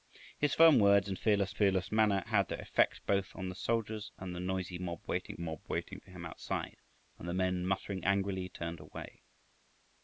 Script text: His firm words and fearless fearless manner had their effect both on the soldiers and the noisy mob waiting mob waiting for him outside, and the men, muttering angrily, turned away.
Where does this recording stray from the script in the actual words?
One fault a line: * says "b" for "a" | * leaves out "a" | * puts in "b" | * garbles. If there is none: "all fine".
all fine